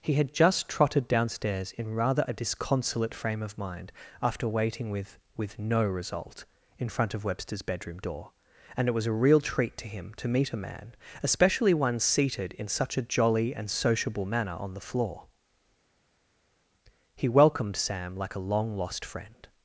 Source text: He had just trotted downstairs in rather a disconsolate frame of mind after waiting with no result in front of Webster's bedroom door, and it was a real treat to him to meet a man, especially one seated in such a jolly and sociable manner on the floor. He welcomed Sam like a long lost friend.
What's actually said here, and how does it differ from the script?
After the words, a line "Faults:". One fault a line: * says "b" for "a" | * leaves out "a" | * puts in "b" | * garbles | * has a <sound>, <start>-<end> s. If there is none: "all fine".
He had just trotted downstairs in rather a disconsolate frame of mind after waiting with with no result in front of Webster's bedroom door, and it was a real treat to him to meet a man, especially one seated in such a jolly and sociable manner on the floor. He welcomed Sam like a long lost friend.
Faults:
* puts in "with"